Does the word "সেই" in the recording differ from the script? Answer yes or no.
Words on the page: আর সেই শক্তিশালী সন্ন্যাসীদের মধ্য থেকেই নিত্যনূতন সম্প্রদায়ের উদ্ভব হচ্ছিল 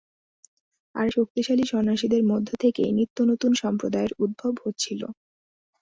yes